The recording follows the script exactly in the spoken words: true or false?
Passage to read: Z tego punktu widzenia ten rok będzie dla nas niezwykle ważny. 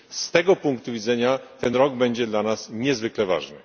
true